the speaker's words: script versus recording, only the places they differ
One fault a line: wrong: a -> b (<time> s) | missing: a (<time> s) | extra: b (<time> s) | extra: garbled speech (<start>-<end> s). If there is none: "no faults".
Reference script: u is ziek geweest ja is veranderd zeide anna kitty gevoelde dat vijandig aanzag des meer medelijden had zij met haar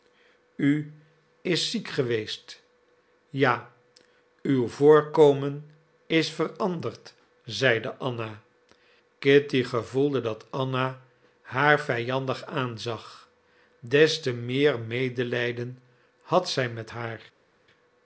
extra: uw voorkomen (4.4 s)
extra: anna haar (10.5 s)
extra: te (14.2 s)